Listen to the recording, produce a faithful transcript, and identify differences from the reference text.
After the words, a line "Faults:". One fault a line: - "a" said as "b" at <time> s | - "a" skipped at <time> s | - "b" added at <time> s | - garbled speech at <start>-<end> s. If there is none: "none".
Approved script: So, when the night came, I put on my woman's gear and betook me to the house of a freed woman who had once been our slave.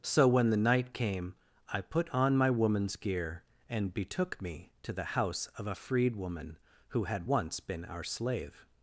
So, when the night came, I put on my woman's gear and betook me to the house of a freed woman who had once been our slave.
Faults:
none